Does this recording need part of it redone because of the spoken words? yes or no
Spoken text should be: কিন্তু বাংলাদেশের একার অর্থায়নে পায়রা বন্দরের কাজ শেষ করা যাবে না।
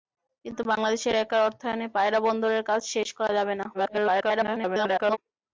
yes